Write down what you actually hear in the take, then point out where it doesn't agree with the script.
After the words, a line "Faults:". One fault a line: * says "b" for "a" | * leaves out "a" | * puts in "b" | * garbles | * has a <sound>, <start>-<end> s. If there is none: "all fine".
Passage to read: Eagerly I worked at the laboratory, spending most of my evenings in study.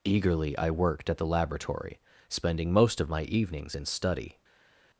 Eagerly I worked at the laboratory, spending most of my evenings in study.
Faults:
all fine